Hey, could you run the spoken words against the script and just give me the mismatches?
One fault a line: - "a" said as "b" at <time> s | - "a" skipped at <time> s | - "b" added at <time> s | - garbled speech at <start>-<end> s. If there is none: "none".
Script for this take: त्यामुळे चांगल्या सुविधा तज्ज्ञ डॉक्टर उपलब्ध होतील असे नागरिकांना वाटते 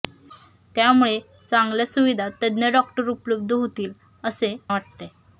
- "नागरिकांना" skipped at 4.5 s